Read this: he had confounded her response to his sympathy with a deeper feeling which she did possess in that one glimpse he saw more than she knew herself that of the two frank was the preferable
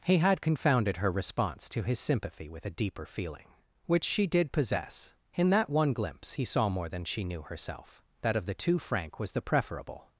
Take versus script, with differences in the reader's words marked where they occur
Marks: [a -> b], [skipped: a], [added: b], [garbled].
he had confounded her response to his sympathy with a deeper feeling which she did possess in that one glimpse he saw more than she knew herself that of the two frank was the preferable